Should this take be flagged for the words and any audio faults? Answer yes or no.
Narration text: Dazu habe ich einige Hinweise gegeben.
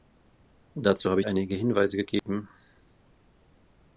yes